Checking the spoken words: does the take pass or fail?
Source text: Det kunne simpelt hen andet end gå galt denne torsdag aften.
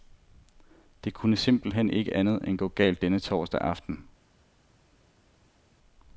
fail